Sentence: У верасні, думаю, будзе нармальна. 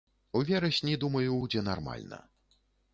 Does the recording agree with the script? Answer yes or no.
yes